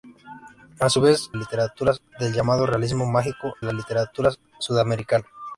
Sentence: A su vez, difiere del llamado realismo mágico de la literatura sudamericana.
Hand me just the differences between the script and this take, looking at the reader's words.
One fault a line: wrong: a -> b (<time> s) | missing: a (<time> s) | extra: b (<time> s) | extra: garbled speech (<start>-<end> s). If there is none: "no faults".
wrong: difiere -> literatura (1.3 s)
missing: de (3.5 s)